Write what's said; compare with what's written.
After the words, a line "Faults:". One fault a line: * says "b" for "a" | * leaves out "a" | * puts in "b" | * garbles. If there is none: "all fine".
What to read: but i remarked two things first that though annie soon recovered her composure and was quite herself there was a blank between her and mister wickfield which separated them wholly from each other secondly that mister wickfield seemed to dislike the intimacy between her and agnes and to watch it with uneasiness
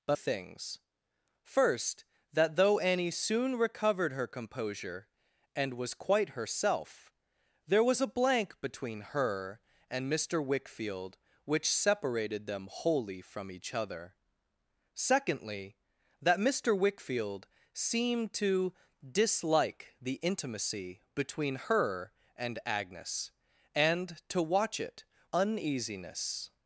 but things first that though annie soon recovered her composure and was quite herself there was a blank between her and mister wickfield which separated them wholly from each other secondly that mister wickfield seemed to dislike the intimacy between her and agnes and to watch it uneasiness
Faults:
* leaves out "i remarked two"
* leaves out "with"